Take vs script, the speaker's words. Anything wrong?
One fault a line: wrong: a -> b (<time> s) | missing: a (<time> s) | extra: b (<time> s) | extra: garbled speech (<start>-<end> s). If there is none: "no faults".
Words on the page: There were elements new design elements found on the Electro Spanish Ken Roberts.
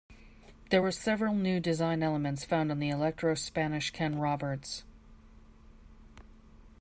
wrong: elements -> several (0.9 s)